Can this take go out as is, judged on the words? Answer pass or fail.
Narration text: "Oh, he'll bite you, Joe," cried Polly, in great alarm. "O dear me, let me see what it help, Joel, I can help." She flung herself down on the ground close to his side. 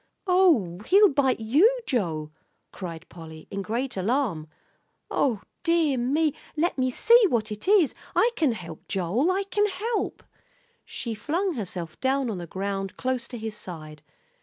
fail